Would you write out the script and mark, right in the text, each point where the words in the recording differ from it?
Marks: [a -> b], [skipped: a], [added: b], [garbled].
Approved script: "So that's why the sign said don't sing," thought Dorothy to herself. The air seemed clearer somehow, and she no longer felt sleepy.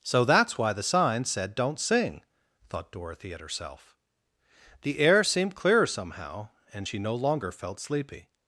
"So that's why the sign said don't sing," thought Dorothy [to -> at] herself. The air seemed clearer somehow, and she no longer felt sleepy.